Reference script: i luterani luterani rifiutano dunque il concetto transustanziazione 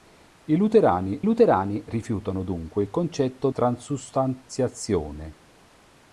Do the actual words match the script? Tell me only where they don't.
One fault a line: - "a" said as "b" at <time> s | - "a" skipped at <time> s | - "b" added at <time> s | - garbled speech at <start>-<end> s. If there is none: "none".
none